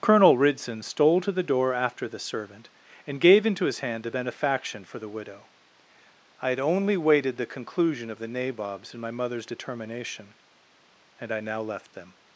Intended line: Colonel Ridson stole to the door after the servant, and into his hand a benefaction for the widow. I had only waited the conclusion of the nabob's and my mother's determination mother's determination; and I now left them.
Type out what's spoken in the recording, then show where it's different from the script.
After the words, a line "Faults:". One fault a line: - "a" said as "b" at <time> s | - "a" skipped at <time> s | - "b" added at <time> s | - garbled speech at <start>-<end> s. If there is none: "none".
Colonel Ridson stole to the door after the servant, and gave into his hand a benefaction for the widow. I had only waited the conclusion of the nabob's and my mother's determination; and I now left them.
Faults:
- "gave" added at 3.2 s
- "mother's determination" skipped at 10.3 s